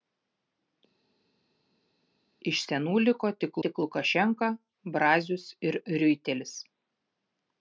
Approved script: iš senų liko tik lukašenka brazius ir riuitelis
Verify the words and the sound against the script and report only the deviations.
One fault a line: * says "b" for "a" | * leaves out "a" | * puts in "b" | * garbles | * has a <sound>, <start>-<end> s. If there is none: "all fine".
* puts in "tik"